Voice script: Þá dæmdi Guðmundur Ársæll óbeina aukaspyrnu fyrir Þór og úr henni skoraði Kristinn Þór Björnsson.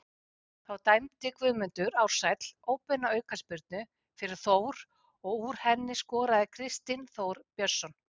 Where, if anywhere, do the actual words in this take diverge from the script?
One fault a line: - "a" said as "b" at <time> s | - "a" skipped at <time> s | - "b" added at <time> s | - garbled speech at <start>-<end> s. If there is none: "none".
none